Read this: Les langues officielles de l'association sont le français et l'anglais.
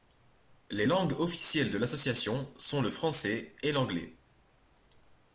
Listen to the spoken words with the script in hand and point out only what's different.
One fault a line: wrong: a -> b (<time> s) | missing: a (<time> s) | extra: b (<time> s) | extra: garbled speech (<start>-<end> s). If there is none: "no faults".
no faults